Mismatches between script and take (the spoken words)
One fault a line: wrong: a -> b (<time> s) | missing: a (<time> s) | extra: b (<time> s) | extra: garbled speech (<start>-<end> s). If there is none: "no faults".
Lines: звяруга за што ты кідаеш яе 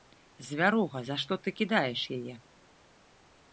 no faults